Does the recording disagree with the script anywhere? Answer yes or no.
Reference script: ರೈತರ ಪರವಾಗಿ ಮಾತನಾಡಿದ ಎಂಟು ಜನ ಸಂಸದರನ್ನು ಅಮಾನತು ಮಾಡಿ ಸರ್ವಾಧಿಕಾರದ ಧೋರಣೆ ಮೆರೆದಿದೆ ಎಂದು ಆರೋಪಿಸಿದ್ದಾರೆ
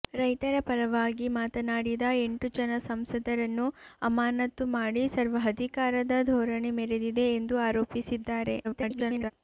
yes